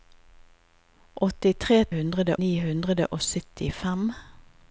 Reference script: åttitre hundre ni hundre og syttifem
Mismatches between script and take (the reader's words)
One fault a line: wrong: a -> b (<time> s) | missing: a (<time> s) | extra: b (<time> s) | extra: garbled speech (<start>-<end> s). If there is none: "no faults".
no faults